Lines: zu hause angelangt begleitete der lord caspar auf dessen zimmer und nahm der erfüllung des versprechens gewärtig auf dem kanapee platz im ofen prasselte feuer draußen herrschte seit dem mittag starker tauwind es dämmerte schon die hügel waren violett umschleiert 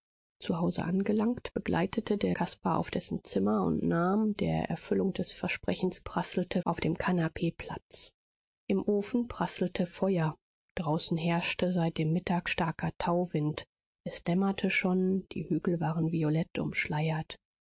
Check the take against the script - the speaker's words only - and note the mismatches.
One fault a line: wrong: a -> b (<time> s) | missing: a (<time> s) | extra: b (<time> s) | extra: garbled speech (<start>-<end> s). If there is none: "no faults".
missing: lord (2.4 s)
wrong: gewärtig -> prasselte (6.0 s)